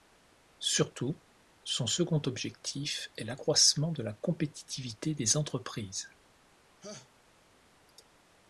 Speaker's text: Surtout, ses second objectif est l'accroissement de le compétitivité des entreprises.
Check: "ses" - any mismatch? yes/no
yes